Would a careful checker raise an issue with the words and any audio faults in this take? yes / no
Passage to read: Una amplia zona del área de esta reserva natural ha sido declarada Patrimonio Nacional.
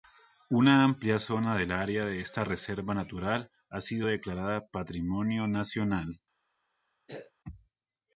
yes